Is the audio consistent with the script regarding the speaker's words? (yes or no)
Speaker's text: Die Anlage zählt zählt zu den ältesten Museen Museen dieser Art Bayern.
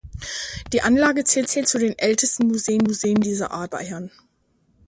yes